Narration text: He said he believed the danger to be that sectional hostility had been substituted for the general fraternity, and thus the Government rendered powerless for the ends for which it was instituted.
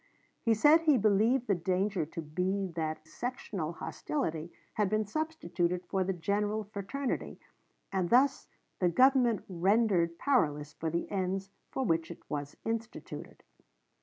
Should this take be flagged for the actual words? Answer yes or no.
no